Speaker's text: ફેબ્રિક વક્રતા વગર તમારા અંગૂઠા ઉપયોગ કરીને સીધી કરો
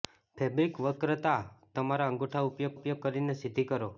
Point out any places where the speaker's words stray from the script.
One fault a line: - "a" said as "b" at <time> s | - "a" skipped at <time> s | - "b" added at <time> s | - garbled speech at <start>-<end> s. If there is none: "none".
- "વગર" skipped at 1.4 s
- "ઉપયોગ" added at 2.8 s